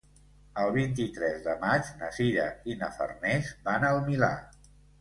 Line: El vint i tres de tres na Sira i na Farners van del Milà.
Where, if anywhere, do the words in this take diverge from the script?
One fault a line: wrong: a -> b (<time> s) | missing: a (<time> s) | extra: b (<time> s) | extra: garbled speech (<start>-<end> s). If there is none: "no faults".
wrong: tres -> maig (1.6 s)
wrong: del -> al (3.9 s)